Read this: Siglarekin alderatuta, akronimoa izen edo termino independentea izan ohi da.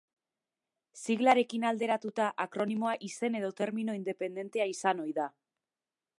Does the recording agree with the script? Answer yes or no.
yes